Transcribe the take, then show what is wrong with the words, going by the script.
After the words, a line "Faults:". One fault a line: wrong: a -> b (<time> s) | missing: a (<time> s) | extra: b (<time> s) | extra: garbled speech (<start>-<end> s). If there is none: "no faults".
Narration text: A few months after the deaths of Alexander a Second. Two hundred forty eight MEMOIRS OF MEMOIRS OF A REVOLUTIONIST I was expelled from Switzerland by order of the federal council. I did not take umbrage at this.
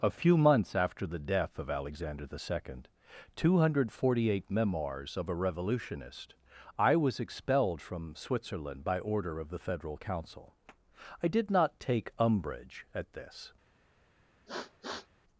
A few months after the death of Alexander the Second. Two hundred forty eight MEMOIRS OF A REVOLUTIONIST I was expelled from Switzerland by order of the federal council. I did not take umbrage at this.
Faults:
wrong: deaths -> death (1.2 s)
wrong: a -> the (2.2 s)
missing: MEMOIRS OF (5.3 s)